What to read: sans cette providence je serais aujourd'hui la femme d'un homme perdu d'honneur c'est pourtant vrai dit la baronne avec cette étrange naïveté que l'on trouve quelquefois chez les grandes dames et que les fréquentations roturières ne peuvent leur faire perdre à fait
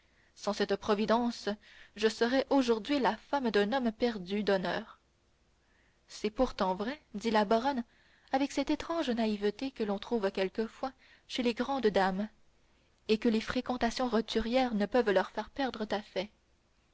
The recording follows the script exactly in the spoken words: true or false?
true